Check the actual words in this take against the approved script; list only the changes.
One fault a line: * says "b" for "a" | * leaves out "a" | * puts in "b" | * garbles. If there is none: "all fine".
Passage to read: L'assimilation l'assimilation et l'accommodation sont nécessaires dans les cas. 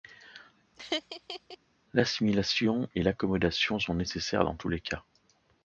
* leaves out "l'assimilation"
* puts in "tous"